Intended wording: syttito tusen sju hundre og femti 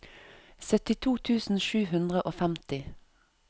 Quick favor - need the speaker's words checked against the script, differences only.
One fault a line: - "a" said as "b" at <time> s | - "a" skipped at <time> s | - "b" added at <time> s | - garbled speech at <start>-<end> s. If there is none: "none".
none